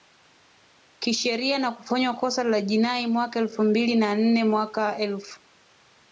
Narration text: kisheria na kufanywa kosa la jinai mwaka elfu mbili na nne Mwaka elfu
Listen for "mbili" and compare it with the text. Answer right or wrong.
right